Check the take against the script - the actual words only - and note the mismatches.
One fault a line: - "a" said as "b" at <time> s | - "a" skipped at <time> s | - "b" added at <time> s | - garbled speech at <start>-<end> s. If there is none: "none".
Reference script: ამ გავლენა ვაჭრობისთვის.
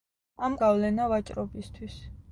none